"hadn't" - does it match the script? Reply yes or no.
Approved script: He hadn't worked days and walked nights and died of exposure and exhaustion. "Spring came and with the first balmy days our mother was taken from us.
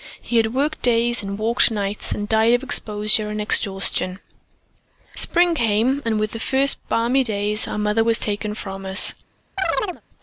no